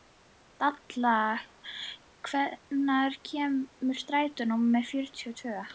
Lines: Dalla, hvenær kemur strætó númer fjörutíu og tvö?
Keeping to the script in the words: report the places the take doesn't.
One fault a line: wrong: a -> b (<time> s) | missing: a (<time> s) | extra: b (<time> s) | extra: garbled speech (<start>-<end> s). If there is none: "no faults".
no faults